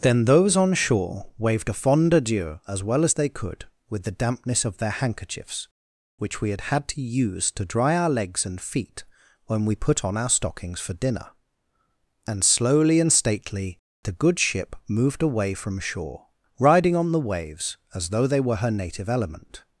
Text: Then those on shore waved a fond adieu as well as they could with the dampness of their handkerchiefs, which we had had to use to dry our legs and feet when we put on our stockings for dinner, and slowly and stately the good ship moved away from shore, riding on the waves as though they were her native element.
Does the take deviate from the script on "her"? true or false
false